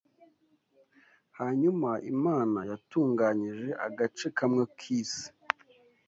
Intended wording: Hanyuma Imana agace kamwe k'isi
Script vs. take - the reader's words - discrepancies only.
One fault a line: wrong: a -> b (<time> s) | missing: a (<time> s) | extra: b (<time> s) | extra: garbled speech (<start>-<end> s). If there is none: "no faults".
extra: yatunganyije (2.7 s)